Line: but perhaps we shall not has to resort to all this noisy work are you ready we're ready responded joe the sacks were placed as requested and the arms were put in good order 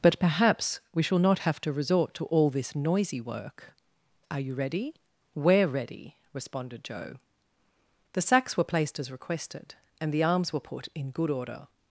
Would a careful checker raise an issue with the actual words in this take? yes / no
yes